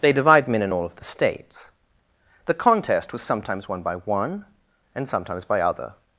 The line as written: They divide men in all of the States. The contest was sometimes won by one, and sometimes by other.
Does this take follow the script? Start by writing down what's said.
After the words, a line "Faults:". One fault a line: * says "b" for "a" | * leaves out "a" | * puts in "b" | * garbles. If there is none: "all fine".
They divide men in all of the States. The contest was sometimes won by one, and sometimes by other.
Faults:
all fine